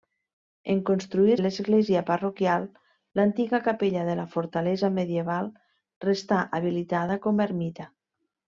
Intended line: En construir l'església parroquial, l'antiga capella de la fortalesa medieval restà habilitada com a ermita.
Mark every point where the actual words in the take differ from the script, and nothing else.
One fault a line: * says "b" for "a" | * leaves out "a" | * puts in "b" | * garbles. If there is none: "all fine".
all fine